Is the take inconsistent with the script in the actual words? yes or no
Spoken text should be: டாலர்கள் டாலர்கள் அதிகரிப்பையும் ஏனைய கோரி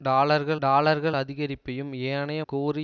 no